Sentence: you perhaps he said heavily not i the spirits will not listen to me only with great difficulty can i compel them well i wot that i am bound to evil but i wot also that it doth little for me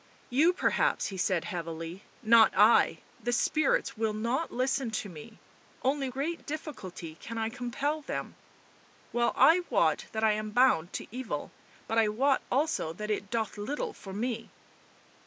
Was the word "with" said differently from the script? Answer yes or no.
yes